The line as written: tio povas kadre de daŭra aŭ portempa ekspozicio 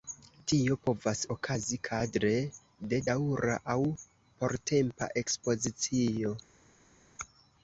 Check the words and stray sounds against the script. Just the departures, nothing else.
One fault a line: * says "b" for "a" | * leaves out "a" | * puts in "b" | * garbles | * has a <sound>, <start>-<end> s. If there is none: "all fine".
* puts in "okazi"